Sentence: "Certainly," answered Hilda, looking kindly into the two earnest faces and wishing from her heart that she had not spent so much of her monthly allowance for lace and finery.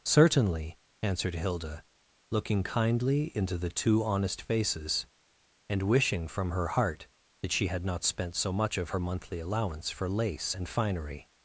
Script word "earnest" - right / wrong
wrong